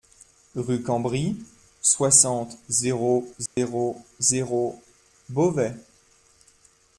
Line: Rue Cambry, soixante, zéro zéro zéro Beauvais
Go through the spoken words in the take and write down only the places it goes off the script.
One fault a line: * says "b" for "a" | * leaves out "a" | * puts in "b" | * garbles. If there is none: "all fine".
all fine